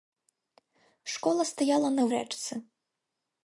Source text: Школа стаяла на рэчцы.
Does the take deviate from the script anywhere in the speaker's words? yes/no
no